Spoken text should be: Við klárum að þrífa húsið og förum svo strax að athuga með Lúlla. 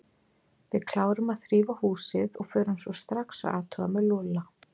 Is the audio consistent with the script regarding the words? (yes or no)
yes